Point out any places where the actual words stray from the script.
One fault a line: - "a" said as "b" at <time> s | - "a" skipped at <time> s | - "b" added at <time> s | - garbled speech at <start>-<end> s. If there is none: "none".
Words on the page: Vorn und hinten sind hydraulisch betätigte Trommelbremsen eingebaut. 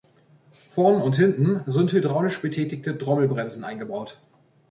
none